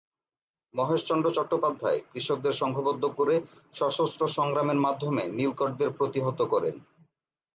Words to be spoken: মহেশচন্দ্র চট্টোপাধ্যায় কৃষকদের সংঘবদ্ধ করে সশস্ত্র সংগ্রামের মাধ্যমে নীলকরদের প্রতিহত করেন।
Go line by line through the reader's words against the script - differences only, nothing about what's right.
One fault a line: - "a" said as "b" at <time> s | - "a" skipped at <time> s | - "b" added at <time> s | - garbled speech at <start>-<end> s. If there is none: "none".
none